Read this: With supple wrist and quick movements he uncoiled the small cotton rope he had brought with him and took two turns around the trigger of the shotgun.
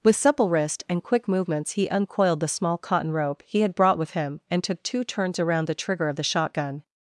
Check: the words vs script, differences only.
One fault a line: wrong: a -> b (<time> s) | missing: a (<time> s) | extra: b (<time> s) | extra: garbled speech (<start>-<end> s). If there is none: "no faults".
no faults